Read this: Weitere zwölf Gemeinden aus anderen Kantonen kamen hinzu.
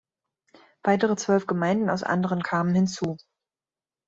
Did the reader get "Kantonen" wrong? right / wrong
wrong